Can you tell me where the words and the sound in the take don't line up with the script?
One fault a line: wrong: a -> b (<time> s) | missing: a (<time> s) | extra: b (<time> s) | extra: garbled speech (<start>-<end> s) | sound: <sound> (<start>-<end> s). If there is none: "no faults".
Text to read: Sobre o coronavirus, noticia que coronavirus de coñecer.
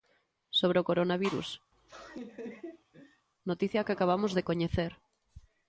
sound: laugh (1.7-3.3 s)
wrong: coronavirus -> acabamos (3.9 s)